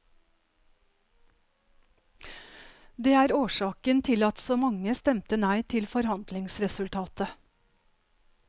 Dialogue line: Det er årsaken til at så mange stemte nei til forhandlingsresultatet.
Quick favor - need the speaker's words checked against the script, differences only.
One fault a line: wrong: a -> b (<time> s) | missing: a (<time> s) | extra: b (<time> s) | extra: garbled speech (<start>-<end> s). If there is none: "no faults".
no faults